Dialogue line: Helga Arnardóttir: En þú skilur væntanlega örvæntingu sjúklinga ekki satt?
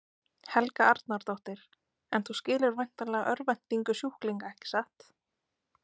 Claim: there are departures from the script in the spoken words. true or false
false